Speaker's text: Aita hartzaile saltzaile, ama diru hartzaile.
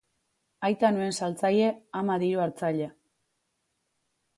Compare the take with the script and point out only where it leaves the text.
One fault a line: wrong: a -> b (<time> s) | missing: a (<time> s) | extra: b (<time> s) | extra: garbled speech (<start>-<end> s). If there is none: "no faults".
wrong: hartzaile -> nuen (0.9 s)